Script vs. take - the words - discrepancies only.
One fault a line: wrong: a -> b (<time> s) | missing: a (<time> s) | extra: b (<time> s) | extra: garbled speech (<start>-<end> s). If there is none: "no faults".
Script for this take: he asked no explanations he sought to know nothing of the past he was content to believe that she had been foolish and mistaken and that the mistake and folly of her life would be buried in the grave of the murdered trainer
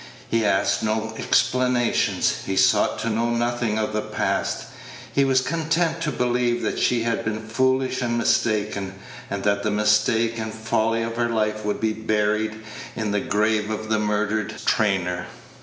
no faults